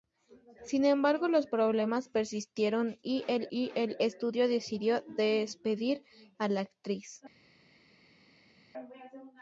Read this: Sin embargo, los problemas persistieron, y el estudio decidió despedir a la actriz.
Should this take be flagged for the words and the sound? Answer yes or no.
yes